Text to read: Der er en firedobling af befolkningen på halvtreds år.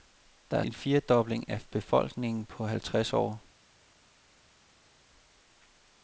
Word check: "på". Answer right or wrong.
right